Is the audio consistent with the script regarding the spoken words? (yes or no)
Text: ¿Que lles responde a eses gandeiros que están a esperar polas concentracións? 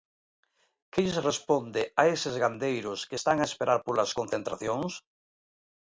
yes